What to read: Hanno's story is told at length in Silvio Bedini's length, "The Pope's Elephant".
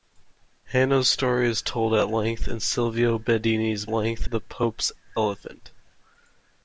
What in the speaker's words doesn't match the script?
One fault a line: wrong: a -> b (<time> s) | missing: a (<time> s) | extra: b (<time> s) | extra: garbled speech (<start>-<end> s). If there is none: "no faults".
no faults